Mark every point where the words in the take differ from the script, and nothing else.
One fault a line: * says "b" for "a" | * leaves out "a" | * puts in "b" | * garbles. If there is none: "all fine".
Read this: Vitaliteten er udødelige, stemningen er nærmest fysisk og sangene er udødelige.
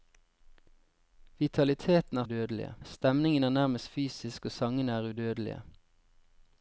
all fine